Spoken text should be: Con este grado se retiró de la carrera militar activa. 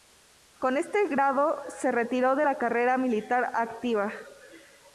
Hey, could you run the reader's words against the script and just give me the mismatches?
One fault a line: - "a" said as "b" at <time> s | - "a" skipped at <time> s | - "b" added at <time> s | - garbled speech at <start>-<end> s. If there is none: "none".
none